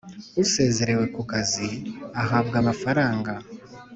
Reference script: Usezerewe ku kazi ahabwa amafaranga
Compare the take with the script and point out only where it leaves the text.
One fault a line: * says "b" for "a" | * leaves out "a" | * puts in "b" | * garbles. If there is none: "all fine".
all fine